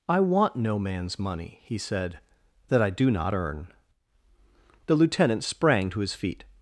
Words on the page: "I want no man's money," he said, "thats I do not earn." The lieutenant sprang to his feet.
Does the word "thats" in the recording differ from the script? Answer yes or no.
yes